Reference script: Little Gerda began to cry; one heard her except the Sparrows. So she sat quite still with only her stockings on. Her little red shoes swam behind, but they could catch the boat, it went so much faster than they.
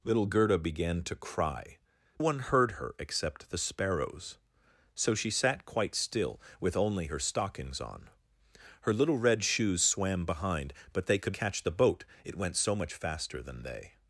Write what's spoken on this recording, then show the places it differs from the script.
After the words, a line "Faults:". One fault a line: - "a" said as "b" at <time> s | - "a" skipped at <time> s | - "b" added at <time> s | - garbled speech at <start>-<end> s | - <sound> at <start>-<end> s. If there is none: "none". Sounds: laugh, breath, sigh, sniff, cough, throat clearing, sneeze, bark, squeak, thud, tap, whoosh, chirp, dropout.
Little Gerda began to cry; one heard her except the Sparrows. So she sat quite still with only her stockings on. Her little red shoes swam behind, but they could catch the boat, it went so much faster than they.
Faults:
none